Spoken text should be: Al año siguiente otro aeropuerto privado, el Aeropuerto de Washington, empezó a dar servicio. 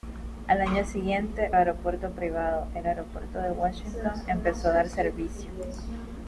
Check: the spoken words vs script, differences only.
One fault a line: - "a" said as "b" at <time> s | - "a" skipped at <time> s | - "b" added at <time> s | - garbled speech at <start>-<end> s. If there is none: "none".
- "otro" skipped at 1.5 s